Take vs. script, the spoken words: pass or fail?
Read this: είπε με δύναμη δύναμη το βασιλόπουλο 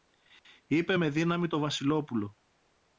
fail